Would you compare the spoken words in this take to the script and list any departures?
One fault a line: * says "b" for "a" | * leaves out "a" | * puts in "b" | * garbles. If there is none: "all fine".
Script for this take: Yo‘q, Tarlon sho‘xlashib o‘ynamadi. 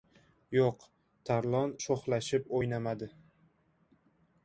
all fine